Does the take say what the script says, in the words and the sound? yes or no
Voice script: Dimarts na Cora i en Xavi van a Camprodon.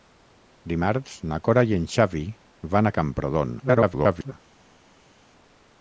no